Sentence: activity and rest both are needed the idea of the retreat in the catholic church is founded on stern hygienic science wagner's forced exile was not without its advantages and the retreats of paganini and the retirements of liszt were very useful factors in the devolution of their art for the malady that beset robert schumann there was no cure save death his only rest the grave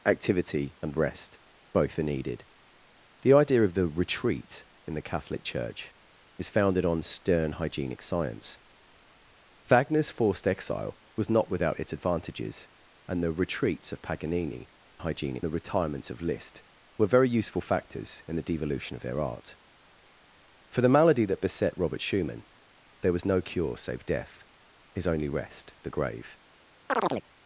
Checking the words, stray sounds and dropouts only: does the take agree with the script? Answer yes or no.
no